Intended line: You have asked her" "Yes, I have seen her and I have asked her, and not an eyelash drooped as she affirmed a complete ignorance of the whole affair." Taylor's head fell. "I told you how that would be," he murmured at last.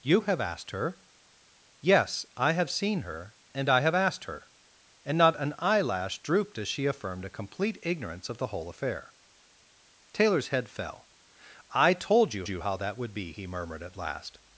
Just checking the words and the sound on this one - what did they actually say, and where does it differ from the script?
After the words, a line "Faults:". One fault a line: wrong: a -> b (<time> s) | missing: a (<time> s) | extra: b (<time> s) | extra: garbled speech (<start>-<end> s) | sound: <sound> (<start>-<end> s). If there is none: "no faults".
You have asked her" "Yes, I have seen her and I have asked her, and not an eyelash drooped as she affirmed a complete ignorance of the whole affair." Taylor's head fell. "I told you you how that would be," he murmured at last.
Faults:
extra: you (12.5 s)